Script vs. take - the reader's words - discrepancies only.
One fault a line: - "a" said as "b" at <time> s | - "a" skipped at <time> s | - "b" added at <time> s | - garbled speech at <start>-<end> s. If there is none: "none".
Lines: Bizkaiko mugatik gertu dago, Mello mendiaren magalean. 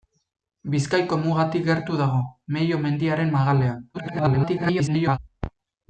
- garbled speech at 3.9-5.2 s